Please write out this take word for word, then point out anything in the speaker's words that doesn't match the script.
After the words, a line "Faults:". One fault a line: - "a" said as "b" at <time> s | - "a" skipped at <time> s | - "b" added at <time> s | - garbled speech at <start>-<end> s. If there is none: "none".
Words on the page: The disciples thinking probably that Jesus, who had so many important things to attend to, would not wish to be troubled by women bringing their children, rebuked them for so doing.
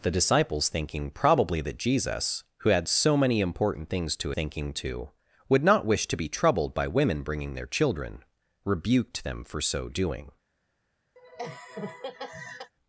The disciples thinking probably that Jesus, who had so many important things to thinking to, would not wish to be troubled by women bringing their children, rebuked them for so doing.
Faults:
- "attend" said as "thinking" at 4.3 s